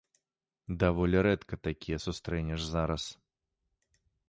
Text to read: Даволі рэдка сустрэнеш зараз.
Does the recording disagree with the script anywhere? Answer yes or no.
yes